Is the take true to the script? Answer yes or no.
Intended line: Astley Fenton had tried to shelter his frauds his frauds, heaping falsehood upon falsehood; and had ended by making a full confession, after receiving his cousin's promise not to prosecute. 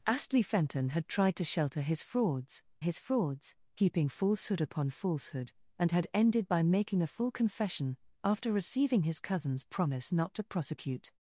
yes